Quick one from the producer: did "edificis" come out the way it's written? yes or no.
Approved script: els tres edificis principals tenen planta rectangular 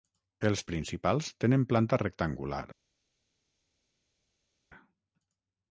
no